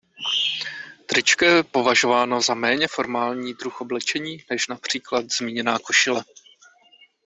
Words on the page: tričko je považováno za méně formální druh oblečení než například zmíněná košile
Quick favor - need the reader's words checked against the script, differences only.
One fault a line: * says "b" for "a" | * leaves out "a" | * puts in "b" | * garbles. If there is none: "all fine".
all fine